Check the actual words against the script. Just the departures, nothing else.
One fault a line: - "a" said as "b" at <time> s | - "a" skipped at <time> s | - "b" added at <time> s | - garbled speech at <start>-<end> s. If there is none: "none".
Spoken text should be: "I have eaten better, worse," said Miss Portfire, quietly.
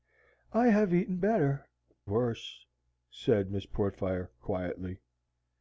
none